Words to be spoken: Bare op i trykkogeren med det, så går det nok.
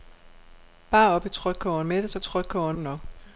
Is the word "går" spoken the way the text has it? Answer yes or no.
no